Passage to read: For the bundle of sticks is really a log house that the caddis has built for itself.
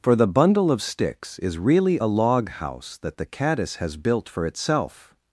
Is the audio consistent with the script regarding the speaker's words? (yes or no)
yes